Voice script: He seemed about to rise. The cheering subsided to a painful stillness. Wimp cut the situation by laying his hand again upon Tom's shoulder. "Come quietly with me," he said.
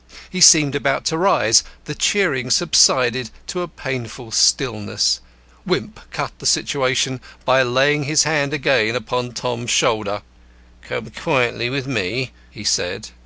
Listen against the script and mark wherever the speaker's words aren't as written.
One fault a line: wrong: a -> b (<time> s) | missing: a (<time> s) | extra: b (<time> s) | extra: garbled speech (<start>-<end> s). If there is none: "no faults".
no faults